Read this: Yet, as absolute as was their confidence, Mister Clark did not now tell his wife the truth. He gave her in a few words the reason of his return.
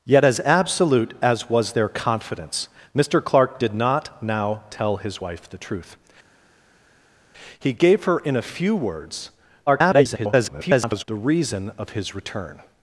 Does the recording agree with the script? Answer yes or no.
no